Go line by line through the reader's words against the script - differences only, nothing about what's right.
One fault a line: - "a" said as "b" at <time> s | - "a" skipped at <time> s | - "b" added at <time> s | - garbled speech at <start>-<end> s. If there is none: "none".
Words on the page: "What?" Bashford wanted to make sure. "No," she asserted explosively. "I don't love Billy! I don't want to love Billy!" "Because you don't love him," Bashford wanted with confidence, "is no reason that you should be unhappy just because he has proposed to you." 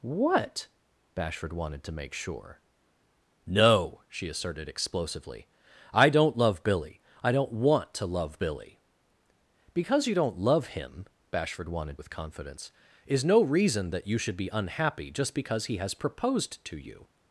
none